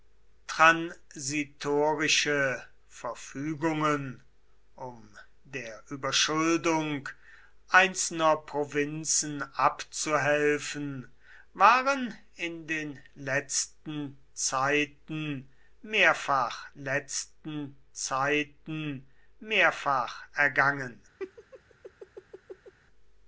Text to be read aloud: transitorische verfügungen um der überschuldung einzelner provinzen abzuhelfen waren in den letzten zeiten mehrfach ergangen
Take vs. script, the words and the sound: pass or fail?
fail